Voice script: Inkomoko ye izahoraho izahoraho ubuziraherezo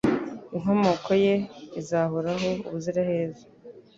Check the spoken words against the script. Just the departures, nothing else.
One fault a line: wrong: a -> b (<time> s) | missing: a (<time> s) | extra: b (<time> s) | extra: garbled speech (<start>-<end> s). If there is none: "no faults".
missing: izahoraho (2.5 s)